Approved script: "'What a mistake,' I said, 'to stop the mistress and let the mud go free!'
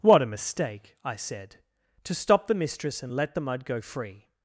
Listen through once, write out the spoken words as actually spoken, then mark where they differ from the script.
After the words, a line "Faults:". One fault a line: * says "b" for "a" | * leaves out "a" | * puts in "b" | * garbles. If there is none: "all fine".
"'What a mistake,' I said, 'to stop the mistress and let the mud go free!'
Faults:
all fine